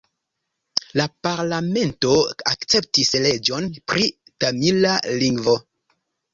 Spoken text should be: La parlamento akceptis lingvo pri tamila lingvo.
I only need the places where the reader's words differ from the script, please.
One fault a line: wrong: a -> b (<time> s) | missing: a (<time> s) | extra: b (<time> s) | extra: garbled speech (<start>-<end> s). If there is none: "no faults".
wrong: lingvo -> leĝon (3.3 s)